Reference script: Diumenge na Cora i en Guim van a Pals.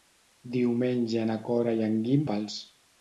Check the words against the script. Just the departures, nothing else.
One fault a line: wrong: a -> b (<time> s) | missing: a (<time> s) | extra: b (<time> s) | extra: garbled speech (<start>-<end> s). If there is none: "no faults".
missing: van (2.2 s)